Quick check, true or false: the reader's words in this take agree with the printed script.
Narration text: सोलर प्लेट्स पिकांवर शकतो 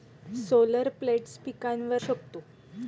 true